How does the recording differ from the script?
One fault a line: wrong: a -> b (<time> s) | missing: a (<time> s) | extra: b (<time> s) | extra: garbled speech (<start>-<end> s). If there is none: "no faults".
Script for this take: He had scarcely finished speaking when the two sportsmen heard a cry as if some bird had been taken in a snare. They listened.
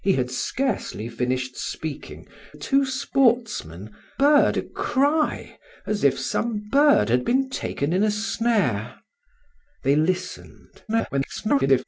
missing: when the (2.3 s)
wrong: heard -> bird (4.2 s)
extra: garbled speech (10.9-11.8 s)